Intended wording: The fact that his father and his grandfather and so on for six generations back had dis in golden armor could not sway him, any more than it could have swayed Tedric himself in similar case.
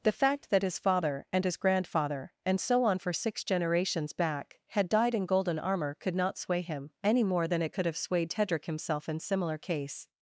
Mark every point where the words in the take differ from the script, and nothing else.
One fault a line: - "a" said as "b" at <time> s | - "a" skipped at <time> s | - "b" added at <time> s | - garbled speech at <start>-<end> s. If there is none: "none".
- "dis" said as "died" at 4.9 s